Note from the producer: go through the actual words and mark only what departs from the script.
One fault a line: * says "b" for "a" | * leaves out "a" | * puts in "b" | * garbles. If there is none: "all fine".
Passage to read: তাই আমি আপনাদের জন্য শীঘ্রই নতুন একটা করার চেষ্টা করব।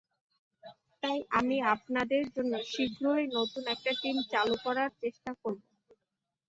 * puts in "টিম চালু"